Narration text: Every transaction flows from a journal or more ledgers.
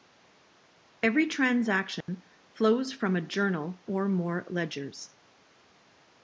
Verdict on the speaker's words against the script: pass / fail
pass